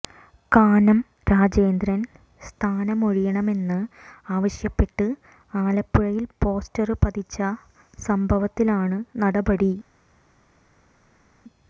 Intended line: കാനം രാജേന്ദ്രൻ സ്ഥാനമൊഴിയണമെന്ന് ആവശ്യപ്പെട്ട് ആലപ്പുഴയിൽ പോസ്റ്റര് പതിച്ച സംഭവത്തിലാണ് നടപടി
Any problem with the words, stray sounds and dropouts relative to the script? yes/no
no